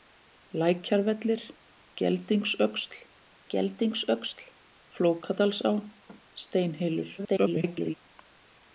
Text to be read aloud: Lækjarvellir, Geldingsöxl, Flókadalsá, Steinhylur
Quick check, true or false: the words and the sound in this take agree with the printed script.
false